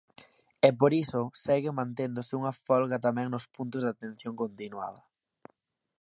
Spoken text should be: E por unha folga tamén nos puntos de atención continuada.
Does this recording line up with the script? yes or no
no